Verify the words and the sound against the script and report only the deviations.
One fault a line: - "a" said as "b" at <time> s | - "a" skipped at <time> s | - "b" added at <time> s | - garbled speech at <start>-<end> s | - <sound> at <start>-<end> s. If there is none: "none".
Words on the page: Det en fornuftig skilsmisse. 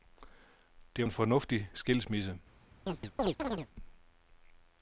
- chirp at 2.9-3.7 s